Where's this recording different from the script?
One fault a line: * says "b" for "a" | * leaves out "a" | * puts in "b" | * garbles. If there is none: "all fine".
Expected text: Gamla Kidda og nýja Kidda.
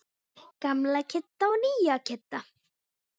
all fine